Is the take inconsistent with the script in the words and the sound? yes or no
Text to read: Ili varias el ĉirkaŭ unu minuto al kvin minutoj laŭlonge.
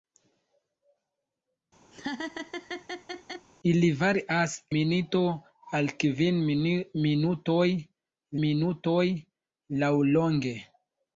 yes